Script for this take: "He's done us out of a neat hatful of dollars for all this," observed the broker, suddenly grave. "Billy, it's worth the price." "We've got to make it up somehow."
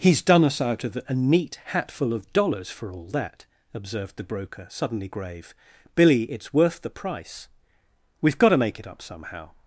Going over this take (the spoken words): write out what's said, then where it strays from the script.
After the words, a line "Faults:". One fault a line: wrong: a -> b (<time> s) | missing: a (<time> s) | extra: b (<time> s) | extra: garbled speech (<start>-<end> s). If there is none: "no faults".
"He's done us out of a neat hatful of dollars for all that," observed the broker, suddenly grave. "Billy, it's worth the price." "We've got to make it up somehow."
Faults:
wrong: this -> that (3.1 s)